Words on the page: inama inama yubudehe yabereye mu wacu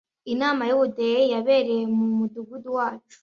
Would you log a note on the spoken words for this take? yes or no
yes